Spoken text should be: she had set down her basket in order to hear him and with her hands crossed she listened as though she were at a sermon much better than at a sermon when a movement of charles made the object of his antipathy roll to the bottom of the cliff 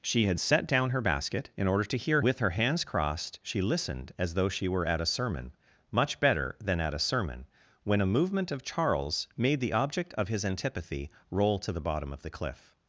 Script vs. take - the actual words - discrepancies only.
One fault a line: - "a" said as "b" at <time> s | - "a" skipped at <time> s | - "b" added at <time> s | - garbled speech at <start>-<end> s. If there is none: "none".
- "him and" skipped at 2.2 s